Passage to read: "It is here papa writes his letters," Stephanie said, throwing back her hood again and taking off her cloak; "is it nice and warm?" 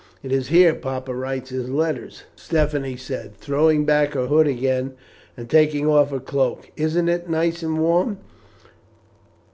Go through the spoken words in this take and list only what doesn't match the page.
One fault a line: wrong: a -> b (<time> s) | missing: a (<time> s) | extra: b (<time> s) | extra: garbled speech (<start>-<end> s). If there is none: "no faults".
wrong: is -> isn't (6.8 s)